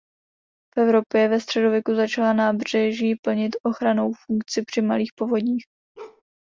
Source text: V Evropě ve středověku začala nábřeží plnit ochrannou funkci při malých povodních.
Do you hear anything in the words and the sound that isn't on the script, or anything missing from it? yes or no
yes